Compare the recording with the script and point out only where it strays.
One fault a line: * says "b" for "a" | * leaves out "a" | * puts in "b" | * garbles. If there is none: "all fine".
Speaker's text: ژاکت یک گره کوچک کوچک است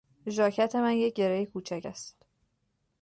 * puts in "من"
* leaves out "کوچک"